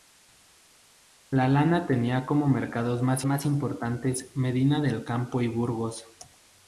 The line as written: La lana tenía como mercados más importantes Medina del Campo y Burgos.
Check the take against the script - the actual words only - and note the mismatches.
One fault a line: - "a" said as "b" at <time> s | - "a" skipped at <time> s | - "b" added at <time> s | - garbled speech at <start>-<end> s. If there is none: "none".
- "más" added at 3.3 s